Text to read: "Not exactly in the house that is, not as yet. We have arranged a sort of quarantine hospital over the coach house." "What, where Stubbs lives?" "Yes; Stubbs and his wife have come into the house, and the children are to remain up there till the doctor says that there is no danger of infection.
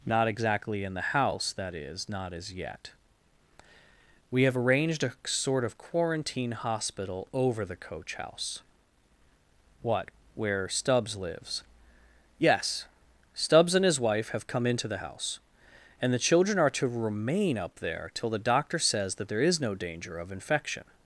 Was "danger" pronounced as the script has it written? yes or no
yes